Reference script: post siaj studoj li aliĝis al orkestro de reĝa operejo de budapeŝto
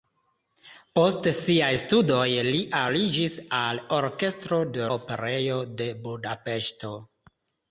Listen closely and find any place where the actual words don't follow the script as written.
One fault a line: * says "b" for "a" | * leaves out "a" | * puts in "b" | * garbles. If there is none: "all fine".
* leaves out "reĝa"